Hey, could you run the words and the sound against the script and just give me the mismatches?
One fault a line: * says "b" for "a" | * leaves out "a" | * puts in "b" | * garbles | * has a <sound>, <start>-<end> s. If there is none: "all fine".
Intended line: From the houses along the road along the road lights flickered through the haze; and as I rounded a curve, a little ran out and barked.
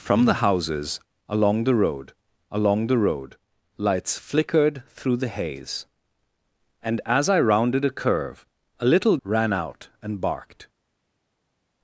all fine